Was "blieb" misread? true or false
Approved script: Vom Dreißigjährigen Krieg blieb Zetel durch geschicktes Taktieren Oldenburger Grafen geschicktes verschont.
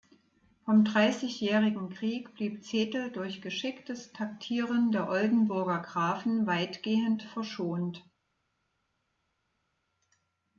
false